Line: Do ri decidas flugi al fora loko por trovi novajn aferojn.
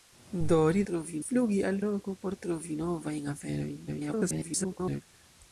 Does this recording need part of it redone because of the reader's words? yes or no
yes